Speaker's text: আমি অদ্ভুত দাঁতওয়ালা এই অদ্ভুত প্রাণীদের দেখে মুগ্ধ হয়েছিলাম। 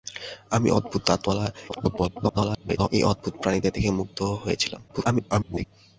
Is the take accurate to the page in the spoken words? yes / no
no